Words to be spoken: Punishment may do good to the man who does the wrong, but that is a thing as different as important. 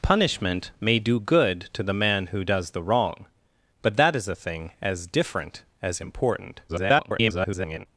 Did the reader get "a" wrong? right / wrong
right